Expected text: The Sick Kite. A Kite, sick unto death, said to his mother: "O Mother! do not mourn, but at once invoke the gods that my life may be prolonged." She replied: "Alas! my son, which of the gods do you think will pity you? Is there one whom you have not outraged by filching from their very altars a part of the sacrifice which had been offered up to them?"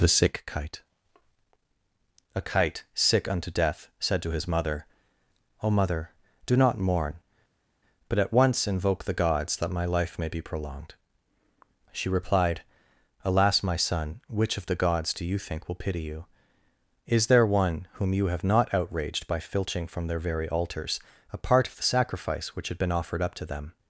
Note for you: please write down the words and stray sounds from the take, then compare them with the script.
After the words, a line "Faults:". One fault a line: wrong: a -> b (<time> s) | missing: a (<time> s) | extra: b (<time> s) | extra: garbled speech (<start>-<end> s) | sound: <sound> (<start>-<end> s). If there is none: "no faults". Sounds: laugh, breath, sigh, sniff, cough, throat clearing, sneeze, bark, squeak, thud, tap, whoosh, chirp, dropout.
The Sick Kite. A Kite, sick unto death, said to his mother: "O Mother! do not mourn, but at once invoke the gods that my life may be prolonged." She replied: "Alas! my son, which of the gods do you think will pity you? Is there one whom you have not outraged by filching from their very altars a part of the sacrifice which had been offered up to them?"
Faults:
no faults